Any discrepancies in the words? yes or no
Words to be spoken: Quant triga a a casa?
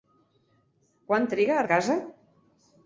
no